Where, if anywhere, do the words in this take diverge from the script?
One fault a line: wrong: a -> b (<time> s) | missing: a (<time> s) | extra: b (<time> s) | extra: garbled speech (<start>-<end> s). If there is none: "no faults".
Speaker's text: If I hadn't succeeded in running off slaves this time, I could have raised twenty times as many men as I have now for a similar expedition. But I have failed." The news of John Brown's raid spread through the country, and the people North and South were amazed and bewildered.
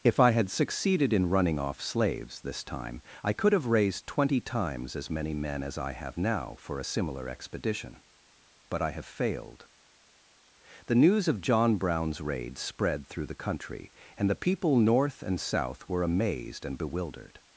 wrong: hadn't -> had (0.3 s)